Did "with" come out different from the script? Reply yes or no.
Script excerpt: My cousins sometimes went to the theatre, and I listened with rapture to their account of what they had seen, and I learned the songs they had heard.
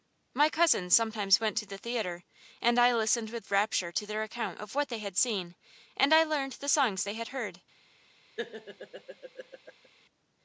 no